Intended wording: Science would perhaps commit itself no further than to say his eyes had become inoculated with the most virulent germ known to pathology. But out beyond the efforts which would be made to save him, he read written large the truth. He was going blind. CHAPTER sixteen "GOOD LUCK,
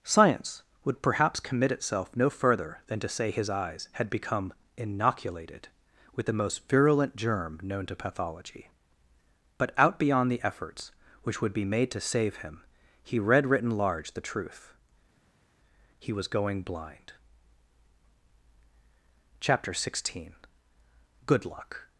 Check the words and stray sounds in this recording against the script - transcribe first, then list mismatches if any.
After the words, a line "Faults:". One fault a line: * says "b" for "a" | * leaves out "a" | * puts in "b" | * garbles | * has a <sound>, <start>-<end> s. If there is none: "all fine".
Science would perhaps commit itself no further than to say his eyes had become inoculated with the most virulent germ known to pathology. But out beyond the efforts which would be made to save him, he read written large the truth. He was going blind. CHAPTER sixteen "GOOD LUCK,
Faults:
all fine